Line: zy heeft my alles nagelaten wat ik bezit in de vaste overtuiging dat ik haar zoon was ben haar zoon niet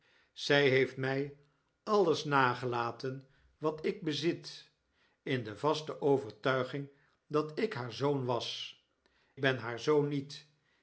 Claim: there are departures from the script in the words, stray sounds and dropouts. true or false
false